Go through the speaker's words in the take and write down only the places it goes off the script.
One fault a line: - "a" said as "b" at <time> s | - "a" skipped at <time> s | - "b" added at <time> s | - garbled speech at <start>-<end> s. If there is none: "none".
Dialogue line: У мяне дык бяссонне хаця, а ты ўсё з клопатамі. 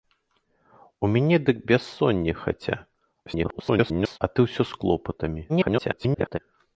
- garbled speech at 3.3-4.2 s
- garbled speech at 5.5-6.4 s